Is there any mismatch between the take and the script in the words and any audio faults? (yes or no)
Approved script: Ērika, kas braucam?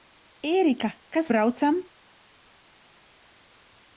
no